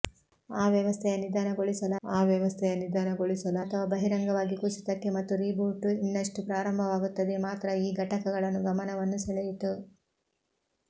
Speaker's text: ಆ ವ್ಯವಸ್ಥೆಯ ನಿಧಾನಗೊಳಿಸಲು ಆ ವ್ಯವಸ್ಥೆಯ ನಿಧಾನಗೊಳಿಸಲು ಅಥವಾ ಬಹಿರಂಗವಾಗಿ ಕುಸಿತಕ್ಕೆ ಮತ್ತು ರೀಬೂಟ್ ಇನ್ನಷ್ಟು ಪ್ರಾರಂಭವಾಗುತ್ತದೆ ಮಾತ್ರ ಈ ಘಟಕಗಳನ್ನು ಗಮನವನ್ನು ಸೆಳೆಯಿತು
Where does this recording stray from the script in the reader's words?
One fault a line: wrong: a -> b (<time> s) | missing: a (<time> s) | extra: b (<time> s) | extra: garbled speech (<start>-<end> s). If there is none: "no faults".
no faults